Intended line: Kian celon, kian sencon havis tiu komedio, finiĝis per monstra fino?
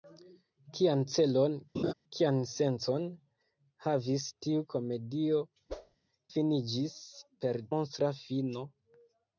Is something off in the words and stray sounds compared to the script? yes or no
yes